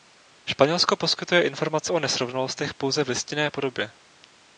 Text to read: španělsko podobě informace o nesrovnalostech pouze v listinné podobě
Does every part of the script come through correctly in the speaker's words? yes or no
no